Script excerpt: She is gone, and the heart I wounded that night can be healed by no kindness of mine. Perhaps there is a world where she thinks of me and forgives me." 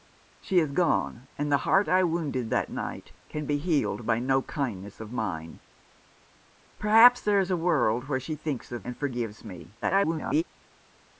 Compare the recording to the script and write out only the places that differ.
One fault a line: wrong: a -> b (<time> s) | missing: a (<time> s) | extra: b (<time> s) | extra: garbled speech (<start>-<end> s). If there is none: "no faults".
missing: me (8.9 s)
extra: garbled speech (9.8-10.4 s)